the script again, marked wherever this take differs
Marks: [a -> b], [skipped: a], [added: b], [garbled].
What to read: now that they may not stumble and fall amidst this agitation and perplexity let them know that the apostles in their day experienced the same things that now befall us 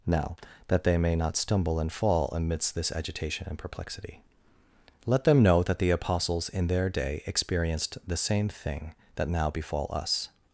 now that they may not stumble and fall amidst this agitation and perplexity let them know that the apostles in their day experienced the same [things -> thing] that now befall us